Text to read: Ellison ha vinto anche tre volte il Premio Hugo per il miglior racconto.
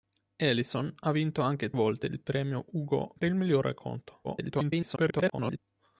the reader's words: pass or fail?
fail